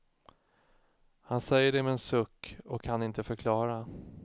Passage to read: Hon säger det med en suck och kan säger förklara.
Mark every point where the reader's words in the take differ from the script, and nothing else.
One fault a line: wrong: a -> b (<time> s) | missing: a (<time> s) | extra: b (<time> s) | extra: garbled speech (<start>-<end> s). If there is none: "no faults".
wrong: Hon -> Han (1.2 s)
wrong: säger -> inte (3.0 s)